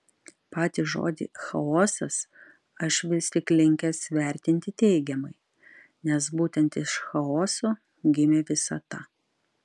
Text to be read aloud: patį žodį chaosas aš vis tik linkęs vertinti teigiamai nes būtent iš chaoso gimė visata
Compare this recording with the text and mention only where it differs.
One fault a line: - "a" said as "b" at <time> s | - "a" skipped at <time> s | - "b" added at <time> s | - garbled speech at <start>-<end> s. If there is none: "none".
none